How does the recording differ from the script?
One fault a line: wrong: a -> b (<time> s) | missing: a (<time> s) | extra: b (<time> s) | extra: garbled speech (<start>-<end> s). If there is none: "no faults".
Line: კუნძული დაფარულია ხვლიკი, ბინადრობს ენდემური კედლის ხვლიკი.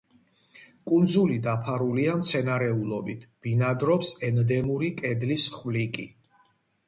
wrong: ხვლიკი -> მცენარეულობით (2.2 s)